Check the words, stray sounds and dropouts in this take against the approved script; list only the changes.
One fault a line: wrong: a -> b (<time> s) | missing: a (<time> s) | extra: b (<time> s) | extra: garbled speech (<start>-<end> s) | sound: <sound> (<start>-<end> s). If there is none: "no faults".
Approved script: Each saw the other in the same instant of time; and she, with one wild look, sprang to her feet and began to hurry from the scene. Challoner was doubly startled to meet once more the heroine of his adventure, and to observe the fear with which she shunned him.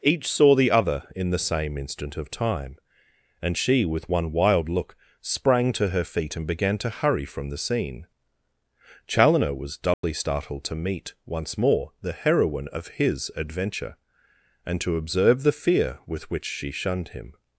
sound: dropout (9.9-10.0 s)